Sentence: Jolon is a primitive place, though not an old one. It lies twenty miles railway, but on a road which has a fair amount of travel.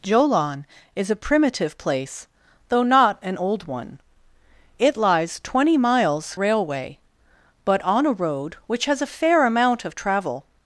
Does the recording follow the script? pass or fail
pass